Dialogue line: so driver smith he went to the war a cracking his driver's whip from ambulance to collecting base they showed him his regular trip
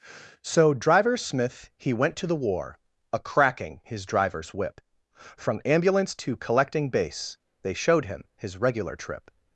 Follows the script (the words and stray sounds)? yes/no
yes